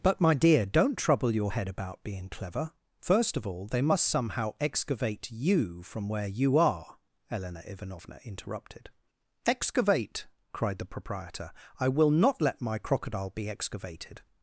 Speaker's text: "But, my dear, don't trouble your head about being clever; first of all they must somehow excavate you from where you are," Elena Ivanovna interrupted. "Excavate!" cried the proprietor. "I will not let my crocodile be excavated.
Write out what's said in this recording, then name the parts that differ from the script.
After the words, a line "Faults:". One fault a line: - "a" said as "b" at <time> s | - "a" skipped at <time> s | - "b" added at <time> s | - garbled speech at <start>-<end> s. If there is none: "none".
"But, my dear, don't trouble your head about being clever; first of all they must somehow excavate you from where you are," Elena Ivanovna interrupted. "Excavate!" cried the proprietor. "I will not let my crocodile be excavated.
Faults:
none